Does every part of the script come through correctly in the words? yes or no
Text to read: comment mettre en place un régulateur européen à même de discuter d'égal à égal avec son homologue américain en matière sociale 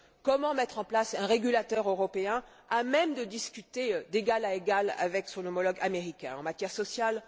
yes